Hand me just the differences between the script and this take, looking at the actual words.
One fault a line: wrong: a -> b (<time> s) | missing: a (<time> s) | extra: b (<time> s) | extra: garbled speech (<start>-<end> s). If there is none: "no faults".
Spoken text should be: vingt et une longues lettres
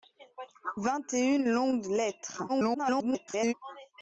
extra: garbled speech (2.5-3.5 s)